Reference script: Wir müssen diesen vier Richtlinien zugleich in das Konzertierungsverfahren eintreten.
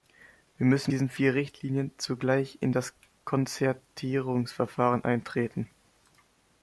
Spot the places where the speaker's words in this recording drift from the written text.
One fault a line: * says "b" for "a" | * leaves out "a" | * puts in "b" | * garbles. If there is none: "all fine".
all fine